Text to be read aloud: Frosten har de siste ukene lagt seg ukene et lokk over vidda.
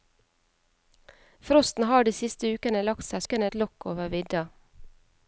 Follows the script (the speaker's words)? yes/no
yes